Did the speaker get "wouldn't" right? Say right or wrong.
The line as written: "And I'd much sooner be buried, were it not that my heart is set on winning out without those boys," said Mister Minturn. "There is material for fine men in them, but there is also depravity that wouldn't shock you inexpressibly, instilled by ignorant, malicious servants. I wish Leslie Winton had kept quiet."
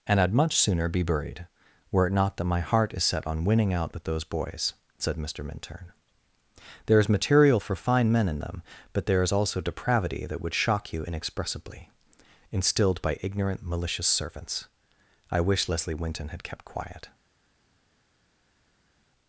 wrong